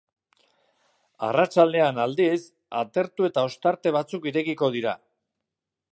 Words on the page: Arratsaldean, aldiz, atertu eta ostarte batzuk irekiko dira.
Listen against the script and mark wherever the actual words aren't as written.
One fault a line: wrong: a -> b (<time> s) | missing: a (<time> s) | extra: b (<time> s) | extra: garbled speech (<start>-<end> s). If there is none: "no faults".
no faults